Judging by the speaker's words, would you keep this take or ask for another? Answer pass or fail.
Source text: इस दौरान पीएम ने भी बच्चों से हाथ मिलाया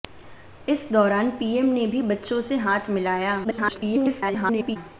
fail